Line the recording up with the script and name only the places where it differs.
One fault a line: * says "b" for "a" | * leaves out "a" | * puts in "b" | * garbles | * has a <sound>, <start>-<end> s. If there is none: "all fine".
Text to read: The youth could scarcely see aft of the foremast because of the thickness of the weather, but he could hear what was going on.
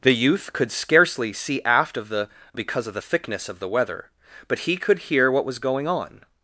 * leaves out "foremast"